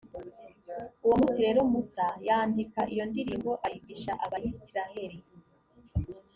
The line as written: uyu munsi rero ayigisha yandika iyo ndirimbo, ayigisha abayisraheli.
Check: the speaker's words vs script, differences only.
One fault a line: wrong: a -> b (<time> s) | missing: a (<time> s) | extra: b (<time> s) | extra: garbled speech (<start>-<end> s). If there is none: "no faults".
wrong: uyu -> uwo (1.0 s)
wrong: ayigisha -> musa (1.7 s)